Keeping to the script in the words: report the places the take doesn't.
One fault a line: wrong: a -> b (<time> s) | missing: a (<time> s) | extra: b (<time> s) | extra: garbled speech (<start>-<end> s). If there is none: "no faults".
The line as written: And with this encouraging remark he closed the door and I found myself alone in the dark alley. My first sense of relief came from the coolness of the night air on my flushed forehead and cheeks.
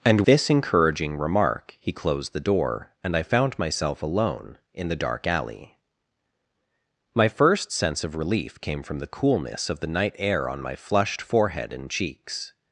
missing: with (0.2 s)